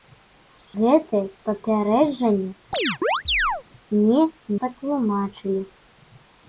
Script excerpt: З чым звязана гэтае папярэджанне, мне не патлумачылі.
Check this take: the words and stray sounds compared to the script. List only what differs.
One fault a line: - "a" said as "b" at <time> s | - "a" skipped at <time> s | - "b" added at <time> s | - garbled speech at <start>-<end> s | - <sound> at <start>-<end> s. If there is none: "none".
- "чым звязана" skipped at 0.8 s
- chirp at 2.7-3.6 s
- "не" skipped at 4.2 s